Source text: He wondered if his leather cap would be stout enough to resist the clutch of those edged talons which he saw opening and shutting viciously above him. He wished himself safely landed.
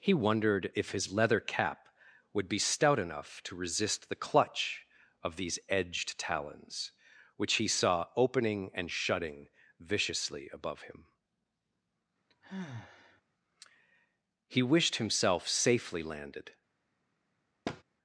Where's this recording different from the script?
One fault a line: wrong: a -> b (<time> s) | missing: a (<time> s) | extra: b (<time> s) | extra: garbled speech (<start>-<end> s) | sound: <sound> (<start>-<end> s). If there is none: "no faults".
wrong: those -> these (5.3 s)
sound: sigh (12.3-13.2 s)
sound: thud (17.6-17.8 s)